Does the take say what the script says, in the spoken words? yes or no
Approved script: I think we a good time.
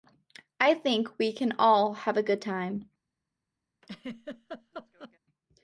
no